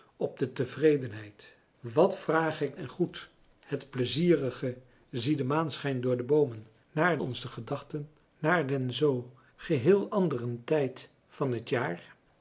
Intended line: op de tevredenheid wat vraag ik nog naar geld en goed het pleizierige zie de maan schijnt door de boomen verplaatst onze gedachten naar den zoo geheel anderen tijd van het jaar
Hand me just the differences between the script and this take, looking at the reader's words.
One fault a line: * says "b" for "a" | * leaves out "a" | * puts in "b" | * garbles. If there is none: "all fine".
* leaves out "nog naar geld"
* says "naar" for "verplaatst"